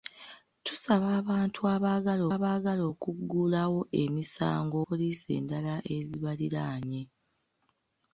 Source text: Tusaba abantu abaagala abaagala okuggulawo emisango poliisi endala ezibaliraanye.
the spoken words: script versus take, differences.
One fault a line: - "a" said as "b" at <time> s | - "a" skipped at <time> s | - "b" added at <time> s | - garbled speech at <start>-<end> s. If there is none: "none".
none